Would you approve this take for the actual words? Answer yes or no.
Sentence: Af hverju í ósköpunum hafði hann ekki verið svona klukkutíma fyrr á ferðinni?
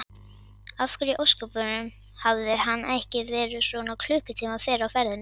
yes